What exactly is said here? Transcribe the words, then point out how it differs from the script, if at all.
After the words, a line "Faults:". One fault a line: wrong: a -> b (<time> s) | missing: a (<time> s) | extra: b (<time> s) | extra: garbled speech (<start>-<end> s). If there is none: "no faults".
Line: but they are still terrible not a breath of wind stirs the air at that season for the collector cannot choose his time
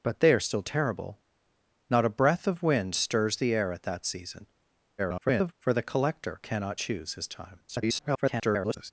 but they are still terrible not a breath of wind stirs the air at that season [garbled] for the collector cannot choose his time [garbled]
Faults:
extra: garbled speech (5.0-5.5 s)
extra: garbled speech (7.7-8.9 s)